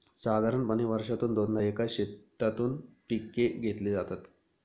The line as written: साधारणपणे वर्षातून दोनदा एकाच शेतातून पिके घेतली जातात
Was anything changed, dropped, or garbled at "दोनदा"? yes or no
no